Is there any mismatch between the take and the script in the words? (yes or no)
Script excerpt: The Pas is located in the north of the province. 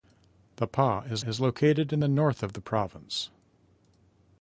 yes